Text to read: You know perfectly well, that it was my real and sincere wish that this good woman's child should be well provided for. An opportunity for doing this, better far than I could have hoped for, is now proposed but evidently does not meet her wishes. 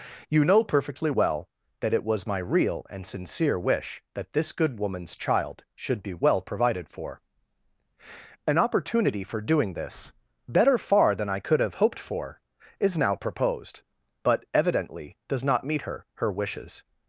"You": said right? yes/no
yes